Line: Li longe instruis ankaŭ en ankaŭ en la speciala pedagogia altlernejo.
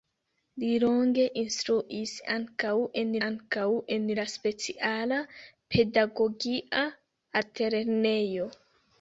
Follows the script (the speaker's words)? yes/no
yes